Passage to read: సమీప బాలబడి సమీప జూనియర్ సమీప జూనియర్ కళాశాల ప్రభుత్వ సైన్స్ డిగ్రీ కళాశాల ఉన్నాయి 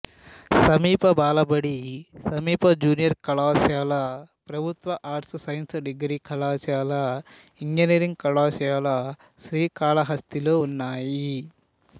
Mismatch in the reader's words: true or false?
true